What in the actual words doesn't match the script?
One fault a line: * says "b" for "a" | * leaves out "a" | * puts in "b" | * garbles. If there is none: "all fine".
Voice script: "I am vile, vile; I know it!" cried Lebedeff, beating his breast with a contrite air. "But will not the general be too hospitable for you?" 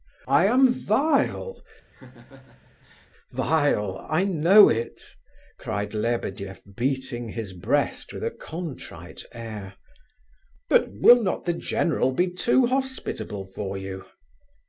all fine